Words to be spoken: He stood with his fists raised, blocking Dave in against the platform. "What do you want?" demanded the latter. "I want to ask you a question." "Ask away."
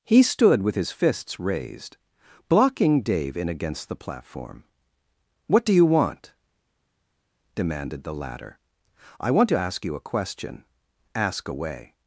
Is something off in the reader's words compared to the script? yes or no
no